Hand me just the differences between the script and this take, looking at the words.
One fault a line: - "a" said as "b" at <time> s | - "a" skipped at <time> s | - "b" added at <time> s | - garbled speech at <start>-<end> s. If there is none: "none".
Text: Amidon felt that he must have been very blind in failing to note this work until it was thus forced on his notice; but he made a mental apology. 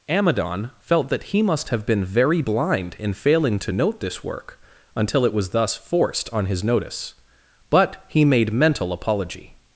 - "a" skipped at 8.5 s